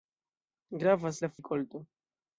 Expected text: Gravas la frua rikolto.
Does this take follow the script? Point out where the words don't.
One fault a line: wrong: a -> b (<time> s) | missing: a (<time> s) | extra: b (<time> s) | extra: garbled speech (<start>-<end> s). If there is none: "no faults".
missing: frua (1.3 s)